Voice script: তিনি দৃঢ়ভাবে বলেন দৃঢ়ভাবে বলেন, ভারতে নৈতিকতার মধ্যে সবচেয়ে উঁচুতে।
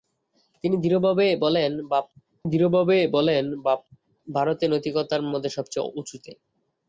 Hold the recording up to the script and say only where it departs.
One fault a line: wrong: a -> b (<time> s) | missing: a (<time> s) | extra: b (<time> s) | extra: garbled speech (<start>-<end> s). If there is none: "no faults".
no faults